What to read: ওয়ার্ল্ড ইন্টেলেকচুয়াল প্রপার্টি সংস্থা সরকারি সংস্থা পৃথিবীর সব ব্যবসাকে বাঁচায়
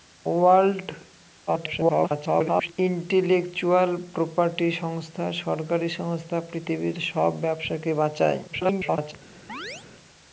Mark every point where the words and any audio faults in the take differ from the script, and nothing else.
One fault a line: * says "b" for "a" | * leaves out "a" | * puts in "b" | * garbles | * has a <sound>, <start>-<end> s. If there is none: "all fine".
* garbles
* garbles
* has a chirp, 9.5-9.9 s